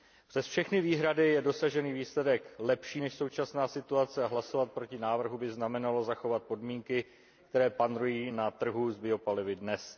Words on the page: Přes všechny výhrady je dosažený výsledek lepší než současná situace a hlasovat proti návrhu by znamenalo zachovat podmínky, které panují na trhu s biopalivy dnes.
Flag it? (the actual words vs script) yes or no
no